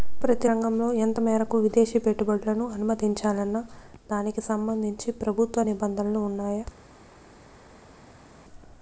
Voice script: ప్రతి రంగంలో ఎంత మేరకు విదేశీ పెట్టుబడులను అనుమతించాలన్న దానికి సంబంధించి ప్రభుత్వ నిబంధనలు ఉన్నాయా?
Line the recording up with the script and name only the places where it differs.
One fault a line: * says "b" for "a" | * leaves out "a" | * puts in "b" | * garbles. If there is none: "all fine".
all fine